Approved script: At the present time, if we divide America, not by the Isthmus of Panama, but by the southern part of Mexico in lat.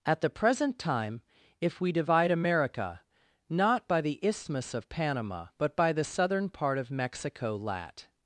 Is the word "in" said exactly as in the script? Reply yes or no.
no